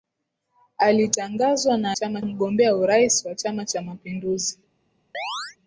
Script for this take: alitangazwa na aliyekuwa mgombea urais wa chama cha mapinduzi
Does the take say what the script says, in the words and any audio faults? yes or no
no